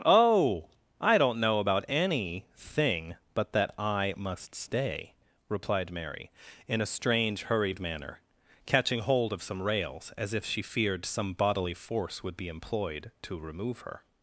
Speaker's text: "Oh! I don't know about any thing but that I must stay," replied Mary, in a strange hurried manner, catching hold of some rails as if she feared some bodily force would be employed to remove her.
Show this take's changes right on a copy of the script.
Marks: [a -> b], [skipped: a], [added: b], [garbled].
"Oh! I don't know about any thing but that I must stay," replied Mary, in a strange hurried manner, catching hold of some rails as if she feared some bodily force would be employed to remove her.